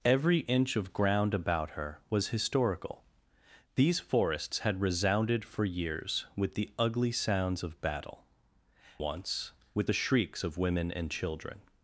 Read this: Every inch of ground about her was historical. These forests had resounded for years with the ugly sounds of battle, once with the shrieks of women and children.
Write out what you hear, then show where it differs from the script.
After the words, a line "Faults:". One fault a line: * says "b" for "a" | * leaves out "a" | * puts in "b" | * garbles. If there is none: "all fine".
Every inch of ground about her was historical. These forests had resounded for years with the ugly sounds of battle, once with the shrieks of women and children.
Faults:
all fine